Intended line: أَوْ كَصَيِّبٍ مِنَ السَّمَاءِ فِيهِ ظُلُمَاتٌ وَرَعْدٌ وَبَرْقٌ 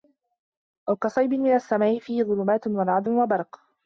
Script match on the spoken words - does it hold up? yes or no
yes